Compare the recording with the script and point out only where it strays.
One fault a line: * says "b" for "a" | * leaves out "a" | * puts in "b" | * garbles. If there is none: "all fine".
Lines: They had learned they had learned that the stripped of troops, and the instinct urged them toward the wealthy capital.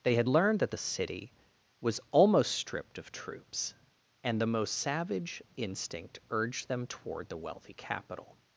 * says "that the city was almost" for "they had learned that the"
* puts in "most savage"